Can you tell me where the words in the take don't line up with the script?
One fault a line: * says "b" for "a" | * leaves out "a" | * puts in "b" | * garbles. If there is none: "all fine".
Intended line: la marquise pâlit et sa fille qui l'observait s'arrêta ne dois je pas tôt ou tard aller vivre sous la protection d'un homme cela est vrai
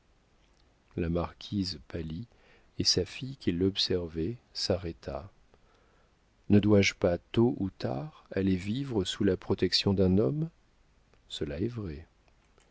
all fine